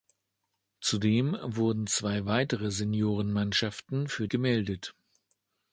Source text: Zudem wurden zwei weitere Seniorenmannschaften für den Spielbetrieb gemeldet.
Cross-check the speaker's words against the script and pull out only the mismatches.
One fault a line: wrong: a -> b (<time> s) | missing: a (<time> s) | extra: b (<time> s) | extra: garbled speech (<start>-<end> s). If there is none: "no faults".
missing: den Spielbetrieb (4.3 s)